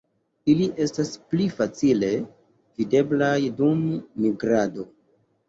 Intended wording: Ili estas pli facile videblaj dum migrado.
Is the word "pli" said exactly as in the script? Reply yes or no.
yes